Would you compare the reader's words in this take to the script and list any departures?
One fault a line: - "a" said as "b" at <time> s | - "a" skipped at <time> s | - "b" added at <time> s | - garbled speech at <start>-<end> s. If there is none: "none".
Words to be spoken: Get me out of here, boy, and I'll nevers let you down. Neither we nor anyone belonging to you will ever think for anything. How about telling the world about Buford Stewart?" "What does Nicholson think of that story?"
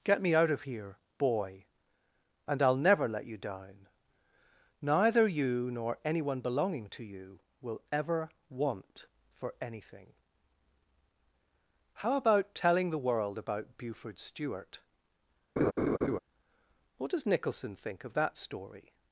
- "nevers" said as "never" at 2.8 s
- "we" said as "you" at 5.3 s
- "think" said as "want" at 8.5 s